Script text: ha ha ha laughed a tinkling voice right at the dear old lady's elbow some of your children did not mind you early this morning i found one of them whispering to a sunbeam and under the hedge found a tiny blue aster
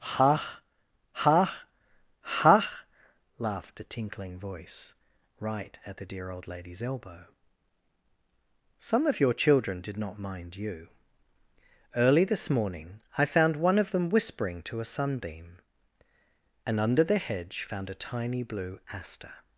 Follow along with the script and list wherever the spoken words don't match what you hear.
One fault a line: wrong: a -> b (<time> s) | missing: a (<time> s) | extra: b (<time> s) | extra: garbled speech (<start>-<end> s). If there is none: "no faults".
no faults